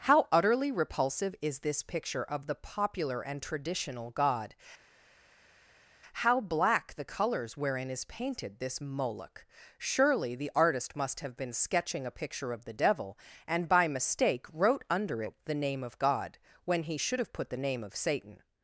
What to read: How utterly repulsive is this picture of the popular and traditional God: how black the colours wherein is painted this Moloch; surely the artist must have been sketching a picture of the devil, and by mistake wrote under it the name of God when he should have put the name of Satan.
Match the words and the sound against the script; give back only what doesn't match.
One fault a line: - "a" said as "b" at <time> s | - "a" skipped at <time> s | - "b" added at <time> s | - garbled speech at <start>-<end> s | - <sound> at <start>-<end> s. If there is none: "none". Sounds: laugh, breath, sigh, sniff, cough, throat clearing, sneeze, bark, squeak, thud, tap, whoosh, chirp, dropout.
none